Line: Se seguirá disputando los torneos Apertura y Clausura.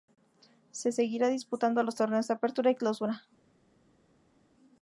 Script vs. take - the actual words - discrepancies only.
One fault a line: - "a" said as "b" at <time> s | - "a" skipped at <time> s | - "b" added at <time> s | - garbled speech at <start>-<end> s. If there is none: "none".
none